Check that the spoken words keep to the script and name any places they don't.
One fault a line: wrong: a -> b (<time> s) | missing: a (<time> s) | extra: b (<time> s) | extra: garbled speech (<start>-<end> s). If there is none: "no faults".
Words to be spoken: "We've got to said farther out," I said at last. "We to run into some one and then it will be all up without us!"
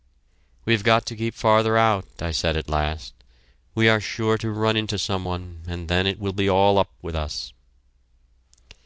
wrong: said -> keep (1.1 s)
extra: are sure (3.9 s)
wrong: without -> with (7.0 s)